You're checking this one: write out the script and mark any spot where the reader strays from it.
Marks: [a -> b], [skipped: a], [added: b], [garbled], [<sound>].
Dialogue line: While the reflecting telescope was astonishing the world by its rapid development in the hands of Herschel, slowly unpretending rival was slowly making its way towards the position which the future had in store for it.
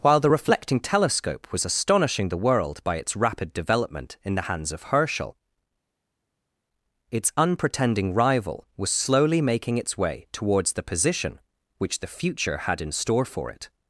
While the reflecting telescope was astonishing the world by its rapid development in the hands of Herschel, [slowly -> its] unpretending rival was slowly making its way towards the position which the future had in store for it.